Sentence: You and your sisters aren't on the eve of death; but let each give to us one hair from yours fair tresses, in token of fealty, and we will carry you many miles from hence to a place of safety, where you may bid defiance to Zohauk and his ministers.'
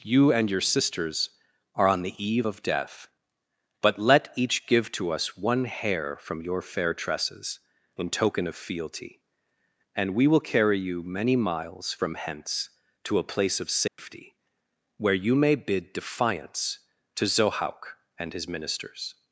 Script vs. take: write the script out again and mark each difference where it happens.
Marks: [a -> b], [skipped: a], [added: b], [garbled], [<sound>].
You and your sisters [aren't -> are] on the eve of death; but let each give to us one hair from [yours -> your] fair tresses, in token of fealty, and we will carry you many miles from hence to a place of safety, [dropout] where you may bid defiance to Zohauk and his ministers.'